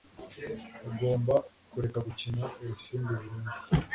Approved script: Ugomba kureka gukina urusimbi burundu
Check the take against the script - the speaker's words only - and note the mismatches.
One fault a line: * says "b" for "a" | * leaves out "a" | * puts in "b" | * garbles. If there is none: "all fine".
all fine